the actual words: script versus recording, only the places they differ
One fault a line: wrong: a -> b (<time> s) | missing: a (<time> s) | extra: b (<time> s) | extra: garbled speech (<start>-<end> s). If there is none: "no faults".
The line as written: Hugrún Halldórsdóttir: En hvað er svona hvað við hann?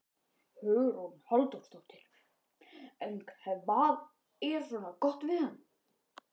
wrong: hvað -> gott (5.1 s)